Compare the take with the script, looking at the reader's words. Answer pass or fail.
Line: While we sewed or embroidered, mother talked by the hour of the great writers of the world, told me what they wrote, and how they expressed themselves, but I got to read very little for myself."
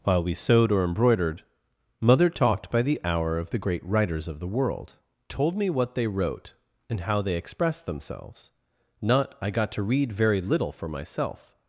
fail